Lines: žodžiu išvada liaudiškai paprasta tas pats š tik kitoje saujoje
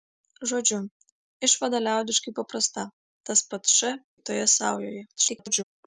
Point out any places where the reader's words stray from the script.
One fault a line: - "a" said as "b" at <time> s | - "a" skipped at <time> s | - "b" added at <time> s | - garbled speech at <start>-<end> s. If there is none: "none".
- "tik" skipped at 4.0 s
- garbled speech at 5.2-5.6 s